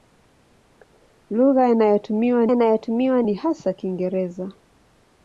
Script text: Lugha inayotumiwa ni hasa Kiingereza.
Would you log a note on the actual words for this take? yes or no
yes